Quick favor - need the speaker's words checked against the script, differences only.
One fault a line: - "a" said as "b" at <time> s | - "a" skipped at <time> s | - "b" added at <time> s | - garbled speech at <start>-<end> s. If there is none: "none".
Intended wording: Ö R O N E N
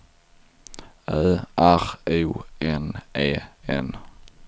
none